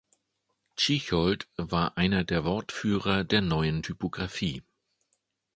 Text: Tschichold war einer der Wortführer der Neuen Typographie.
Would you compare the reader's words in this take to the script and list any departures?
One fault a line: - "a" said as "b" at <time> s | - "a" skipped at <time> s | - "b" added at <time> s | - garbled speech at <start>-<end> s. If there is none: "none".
none